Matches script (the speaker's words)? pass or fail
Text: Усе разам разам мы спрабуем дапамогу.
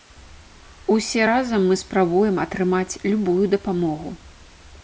fail